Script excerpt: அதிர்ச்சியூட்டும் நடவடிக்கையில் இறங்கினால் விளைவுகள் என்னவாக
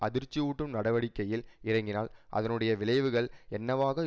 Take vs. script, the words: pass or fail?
fail